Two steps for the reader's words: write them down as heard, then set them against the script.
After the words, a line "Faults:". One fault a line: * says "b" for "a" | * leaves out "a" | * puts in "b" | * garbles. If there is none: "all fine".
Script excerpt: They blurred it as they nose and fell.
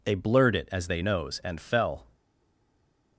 They blurred it as they nose and fell.
Faults:
all fine